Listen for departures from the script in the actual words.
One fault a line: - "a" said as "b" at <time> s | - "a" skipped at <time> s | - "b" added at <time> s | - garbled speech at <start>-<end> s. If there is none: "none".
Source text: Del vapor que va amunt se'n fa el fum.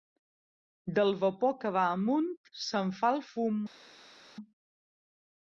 none